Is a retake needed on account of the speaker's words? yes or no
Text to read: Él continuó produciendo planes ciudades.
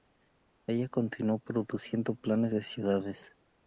yes